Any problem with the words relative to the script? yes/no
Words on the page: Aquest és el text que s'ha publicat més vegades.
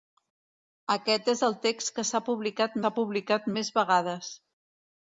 yes